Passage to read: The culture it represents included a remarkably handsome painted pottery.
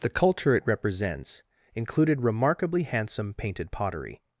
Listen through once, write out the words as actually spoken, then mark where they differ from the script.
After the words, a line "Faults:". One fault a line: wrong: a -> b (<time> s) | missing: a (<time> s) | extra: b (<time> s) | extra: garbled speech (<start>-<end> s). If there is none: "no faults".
The culture it represents included remarkably handsome painted pottery.
Faults:
missing: a (2.2 s)